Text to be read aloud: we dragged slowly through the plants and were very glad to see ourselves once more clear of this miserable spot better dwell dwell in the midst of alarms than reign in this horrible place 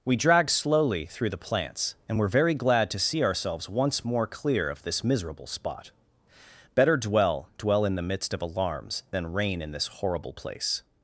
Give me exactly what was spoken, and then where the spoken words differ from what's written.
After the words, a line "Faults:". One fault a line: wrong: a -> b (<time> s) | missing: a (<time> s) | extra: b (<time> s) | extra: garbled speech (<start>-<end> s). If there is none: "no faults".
we dragged slowly through the plants and were very glad to see ourselves once more clear of this miserable spot better dwell dwell in the midst of alarms than reign in this horrible place
Faults:
no faults